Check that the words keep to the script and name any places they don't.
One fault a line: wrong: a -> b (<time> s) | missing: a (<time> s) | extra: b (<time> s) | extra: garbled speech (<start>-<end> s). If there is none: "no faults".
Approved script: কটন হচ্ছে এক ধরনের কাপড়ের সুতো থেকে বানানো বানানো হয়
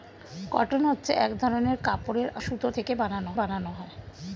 no faults